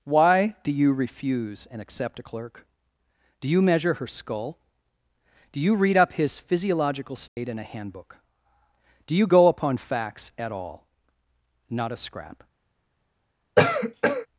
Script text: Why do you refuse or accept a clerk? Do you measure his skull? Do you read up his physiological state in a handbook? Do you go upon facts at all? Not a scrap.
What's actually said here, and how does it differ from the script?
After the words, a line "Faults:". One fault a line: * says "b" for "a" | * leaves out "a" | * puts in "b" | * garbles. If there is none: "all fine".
Why do you refuse and accept a clerk? Do you measure her skull? Do you read up his physiological state in a handbook? Do you go upon facts at all? Not a scrap.
Faults:
* says "and" for "or"
* says "her" for "his"